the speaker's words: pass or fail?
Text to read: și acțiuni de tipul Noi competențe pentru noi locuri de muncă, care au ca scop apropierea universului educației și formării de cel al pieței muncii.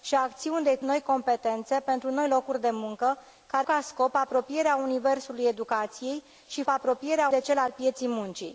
fail